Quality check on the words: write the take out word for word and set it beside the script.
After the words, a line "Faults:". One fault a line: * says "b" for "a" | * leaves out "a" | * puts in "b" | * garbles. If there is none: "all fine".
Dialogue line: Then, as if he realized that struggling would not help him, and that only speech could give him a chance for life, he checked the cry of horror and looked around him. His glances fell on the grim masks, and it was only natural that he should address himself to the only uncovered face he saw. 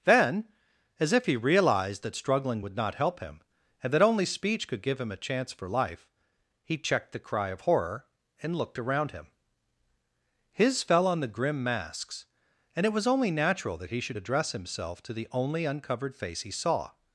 Then, as if he realized that struggling would not help him, and that only speech could give him a chance for life, he checked the cry of horror and looked around him. His fell on the grim masks, and it was only natural that he should address himself to the only uncovered face he saw.
Faults:
* leaves out "glances"